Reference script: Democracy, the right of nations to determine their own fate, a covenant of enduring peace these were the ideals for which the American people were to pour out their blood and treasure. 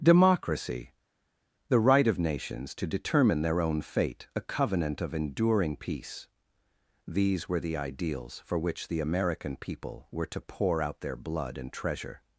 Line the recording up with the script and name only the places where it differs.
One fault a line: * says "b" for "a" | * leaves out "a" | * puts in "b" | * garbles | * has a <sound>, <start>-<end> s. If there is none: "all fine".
all fine